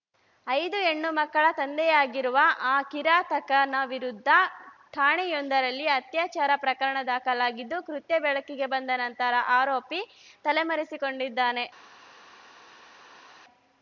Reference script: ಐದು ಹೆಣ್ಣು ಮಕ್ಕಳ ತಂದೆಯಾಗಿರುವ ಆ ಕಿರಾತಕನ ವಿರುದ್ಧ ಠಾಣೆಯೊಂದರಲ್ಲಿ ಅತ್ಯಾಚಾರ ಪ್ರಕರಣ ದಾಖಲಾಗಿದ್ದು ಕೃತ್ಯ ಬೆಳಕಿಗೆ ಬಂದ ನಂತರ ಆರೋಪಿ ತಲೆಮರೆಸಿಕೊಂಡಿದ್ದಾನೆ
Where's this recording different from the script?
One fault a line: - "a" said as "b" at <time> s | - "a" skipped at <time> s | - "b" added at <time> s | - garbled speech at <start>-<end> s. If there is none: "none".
none